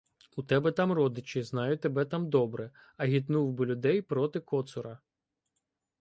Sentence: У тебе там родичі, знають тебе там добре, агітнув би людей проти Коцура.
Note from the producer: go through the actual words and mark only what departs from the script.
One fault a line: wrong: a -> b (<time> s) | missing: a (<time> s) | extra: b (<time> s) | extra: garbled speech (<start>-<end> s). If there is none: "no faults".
no faults